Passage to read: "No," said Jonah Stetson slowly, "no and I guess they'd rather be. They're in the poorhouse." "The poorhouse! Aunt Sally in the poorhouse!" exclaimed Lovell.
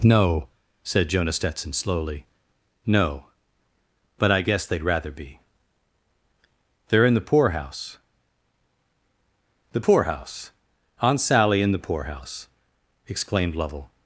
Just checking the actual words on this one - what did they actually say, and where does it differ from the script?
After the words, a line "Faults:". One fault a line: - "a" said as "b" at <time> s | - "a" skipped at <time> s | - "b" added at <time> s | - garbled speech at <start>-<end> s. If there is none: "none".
"No," said Jonah Stetson slowly, "no but I guess they'd rather be. They're in the poorhouse." "The poorhouse! Aunt Sally in the poorhouse!" exclaimed Lovell.
Faults:
- "and" said as "but" at 4.2 s